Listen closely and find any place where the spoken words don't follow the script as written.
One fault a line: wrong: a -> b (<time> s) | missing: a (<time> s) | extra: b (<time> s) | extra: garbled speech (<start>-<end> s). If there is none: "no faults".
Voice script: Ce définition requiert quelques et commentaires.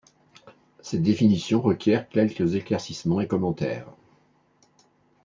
wrong: Ce -> Cette (0.8 s)
extra: éclaircissements (2.5 s)